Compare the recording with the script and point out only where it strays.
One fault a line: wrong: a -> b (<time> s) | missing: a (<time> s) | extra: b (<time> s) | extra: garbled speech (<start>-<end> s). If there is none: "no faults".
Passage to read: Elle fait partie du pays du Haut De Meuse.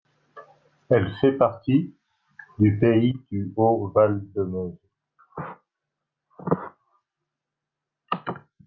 extra: Val (3.9 s)